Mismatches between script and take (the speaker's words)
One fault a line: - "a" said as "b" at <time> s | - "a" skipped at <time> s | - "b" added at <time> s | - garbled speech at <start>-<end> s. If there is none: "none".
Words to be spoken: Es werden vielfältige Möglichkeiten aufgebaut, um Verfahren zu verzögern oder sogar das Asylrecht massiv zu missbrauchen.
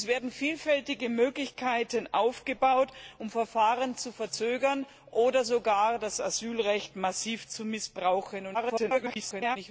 - garbled speech at 8.5-9.6 s